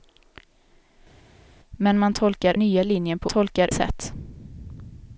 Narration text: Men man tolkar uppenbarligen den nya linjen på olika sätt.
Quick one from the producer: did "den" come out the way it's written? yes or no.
no